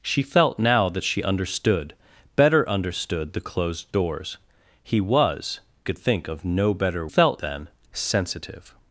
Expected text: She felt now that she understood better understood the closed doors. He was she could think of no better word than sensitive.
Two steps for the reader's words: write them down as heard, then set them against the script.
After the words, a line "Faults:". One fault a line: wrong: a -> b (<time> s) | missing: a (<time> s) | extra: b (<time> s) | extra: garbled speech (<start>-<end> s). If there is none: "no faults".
She felt now that she understood better understood the closed doors. He was could think of no better felt than sensitive.
Faults:
missing: she (5.6 s)
wrong: word -> felt (7.0 s)